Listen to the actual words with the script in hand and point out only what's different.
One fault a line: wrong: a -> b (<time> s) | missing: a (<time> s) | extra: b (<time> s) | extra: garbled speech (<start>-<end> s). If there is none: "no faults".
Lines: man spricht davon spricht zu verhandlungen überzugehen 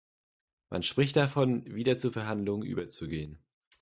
wrong: spricht -> wieder (1.8 s)